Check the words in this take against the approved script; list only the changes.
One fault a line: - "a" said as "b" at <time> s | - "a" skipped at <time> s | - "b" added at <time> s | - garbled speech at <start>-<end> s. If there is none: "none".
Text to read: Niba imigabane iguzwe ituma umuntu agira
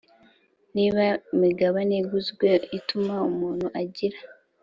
none